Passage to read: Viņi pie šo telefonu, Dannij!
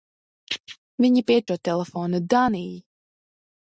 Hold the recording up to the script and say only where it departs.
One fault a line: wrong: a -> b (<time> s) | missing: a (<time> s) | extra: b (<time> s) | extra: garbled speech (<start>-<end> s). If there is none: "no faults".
no faults